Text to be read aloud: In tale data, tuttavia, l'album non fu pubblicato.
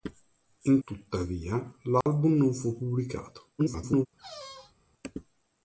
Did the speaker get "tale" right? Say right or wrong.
wrong